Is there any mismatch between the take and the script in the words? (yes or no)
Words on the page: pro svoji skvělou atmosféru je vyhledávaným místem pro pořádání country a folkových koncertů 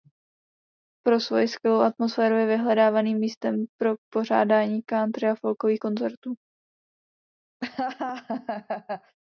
no